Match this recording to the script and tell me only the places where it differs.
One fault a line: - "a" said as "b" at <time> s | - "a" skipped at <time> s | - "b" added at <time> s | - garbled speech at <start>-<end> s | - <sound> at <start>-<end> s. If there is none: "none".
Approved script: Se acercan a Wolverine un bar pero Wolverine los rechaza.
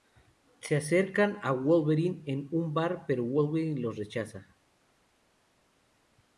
- "en" added at 2.2 s